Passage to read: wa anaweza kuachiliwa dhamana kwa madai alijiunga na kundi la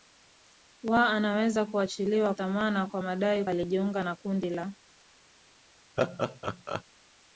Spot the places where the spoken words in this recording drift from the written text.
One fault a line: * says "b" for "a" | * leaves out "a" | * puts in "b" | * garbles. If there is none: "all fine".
all fine